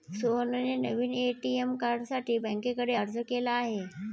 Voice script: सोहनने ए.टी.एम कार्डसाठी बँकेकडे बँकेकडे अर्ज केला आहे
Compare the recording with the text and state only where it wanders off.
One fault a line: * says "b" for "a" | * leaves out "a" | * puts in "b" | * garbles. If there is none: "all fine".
* puts in "नवीन"
* leaves out "बँकेकडे"